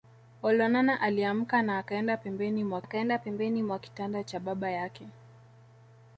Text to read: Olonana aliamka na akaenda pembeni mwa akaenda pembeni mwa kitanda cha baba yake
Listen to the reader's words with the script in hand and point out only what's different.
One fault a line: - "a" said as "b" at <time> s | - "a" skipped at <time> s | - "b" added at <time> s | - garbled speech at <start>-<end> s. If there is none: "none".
none